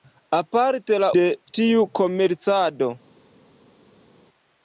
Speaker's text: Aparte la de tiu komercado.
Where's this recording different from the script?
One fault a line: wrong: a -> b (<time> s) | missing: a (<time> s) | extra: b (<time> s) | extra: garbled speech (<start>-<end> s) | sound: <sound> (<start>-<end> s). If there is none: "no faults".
no faults